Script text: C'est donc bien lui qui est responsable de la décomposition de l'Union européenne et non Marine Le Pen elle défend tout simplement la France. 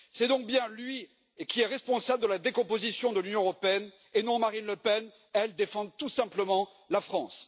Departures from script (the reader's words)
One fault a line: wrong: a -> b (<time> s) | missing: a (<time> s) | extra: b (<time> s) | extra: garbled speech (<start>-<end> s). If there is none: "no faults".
no faults